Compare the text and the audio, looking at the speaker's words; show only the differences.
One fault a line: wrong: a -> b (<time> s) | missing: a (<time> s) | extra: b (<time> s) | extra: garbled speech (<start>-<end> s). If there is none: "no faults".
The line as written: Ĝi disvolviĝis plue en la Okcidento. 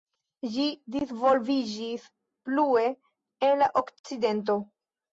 no faults